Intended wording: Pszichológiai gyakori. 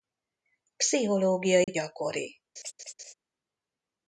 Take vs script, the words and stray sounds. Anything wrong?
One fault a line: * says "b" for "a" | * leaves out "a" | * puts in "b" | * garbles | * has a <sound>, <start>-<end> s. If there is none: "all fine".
* has a dropout, 1.6-1.7 s
* has a laugh, 2.6-3.1 s